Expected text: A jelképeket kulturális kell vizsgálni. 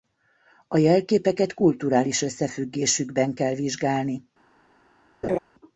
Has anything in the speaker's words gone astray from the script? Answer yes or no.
yes